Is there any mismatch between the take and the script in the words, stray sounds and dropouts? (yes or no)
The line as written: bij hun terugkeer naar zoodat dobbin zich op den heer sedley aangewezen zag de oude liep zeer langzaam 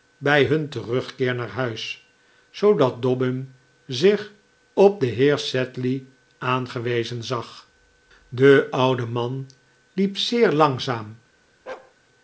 yes